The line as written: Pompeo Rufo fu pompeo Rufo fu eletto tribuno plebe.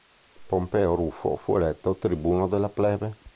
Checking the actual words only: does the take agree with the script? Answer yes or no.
no